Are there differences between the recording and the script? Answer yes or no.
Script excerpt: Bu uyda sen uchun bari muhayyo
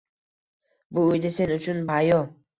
yes